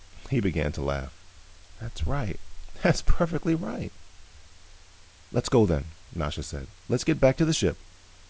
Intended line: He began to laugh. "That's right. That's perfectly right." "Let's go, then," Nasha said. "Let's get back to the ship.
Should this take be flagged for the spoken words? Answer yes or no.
no